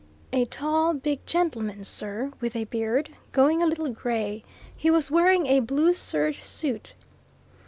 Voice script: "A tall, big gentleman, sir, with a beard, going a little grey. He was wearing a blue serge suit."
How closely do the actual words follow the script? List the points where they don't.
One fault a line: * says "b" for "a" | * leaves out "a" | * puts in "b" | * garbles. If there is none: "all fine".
all fine